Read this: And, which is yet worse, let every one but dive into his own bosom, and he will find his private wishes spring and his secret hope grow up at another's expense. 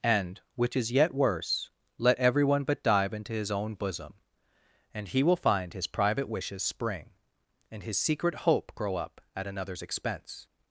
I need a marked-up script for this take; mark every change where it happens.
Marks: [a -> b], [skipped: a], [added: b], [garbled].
And, which is yet worse, let every one but dive into his own bosom, and he will find his private wishes spring and his secret hope grow up at another's expense.